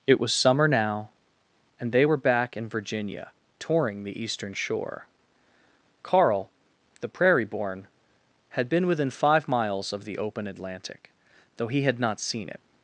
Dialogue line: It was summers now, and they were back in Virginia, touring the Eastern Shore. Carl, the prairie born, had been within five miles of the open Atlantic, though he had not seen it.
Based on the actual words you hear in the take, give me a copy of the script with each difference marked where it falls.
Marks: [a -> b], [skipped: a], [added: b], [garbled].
It was [summers -> summer] now, and they were back in Virginia, touring the Eastern Shore. Carl, the prairie born, had been within five miles of the open Atlantic, though he had not seen it.